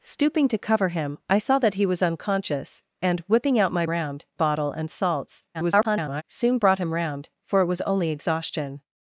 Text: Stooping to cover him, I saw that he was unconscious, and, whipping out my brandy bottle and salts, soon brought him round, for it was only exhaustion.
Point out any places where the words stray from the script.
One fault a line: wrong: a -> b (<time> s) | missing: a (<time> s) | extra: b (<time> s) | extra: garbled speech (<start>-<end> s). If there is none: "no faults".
wrong: brandy -> round (3.9 s)
extra: garbled speech (5.5-6.2 s)